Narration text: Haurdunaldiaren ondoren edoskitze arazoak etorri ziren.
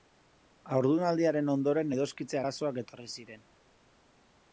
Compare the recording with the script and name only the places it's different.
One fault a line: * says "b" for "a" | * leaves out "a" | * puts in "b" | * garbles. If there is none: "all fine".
all fine